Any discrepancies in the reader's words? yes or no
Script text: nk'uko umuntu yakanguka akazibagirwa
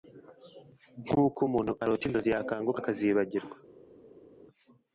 yes